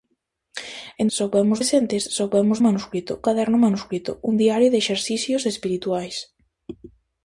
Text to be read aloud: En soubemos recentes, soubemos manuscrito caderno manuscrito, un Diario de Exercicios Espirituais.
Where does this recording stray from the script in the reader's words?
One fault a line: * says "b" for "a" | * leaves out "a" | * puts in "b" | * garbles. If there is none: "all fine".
all fine